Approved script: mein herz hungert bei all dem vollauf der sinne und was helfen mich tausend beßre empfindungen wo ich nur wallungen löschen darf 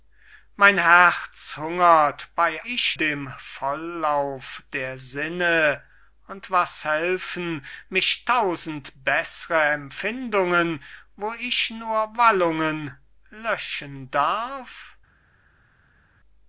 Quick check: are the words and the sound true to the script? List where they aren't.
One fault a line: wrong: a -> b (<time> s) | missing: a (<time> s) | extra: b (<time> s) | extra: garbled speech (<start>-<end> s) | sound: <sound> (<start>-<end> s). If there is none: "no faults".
wrong: all -> ich (2.6 s)